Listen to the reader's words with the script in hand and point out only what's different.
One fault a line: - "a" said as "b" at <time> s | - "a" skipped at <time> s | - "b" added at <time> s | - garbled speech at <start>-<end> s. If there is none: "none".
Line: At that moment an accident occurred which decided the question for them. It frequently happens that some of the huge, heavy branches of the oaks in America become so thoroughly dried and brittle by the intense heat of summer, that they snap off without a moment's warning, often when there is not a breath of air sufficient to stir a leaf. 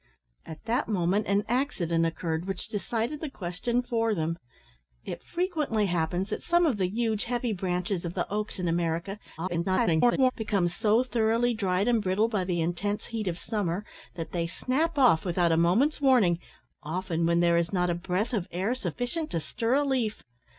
- garbled speech at 9.4-10.3 s